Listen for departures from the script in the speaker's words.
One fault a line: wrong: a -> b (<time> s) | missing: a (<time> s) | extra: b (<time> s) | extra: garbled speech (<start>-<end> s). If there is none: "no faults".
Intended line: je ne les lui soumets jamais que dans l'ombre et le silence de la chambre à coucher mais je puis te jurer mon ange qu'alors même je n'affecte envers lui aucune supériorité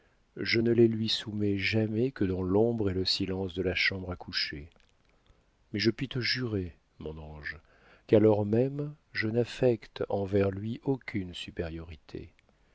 no faults